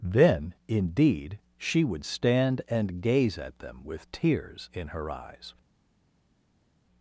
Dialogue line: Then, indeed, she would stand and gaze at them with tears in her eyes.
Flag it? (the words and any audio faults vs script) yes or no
no